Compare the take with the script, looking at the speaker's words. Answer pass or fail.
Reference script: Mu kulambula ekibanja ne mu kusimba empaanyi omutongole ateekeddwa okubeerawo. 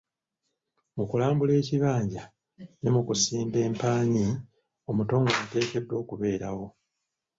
pass